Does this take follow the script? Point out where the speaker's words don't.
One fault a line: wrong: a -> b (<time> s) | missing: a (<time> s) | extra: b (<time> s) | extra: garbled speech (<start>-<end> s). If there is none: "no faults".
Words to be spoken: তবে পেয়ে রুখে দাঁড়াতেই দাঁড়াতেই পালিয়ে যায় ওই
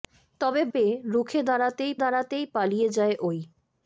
no faults